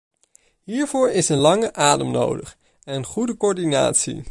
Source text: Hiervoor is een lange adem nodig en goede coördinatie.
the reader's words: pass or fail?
pass